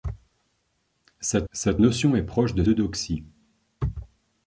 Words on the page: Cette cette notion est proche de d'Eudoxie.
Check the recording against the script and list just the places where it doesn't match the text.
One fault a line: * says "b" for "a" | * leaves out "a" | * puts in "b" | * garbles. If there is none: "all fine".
all fine